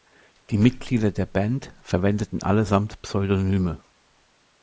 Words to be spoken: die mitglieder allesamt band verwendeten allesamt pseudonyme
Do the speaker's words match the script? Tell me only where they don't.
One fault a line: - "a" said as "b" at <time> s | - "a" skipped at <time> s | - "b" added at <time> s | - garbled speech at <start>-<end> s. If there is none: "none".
- "allesamt" said as "der" at 1.1 s